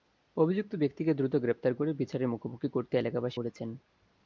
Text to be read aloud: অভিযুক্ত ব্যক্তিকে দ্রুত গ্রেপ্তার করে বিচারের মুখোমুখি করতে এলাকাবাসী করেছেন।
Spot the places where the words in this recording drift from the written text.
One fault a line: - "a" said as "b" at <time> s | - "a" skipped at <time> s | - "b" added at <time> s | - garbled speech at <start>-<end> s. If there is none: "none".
none